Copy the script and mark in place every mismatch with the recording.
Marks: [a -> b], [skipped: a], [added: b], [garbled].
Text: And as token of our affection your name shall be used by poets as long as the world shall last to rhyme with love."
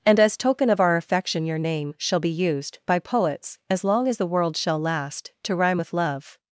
And as token of our affection your name shall be used by poets as long as the world shall last to rhyme with love."